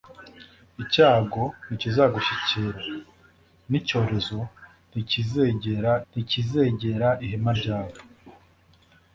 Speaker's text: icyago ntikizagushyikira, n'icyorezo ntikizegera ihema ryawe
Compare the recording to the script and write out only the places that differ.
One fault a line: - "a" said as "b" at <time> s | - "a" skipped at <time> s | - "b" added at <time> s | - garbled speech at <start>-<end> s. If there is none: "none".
- "ntikizegera" added at 6.1 s